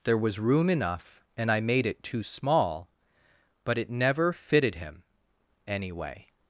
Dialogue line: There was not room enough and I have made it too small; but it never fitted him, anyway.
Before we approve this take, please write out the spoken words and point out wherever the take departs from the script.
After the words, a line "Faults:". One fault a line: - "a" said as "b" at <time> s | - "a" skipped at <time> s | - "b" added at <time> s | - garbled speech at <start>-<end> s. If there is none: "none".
There was room enough and I made it too small; but it never fitted him, anyway.
Faults:
- "not" skipped at 0.4 s
- "have" skipped at 1.6 s